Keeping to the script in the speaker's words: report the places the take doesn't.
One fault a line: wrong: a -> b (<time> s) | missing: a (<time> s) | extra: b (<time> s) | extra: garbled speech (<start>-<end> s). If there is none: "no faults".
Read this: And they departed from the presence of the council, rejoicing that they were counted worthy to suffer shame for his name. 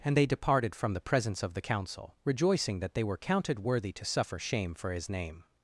no faults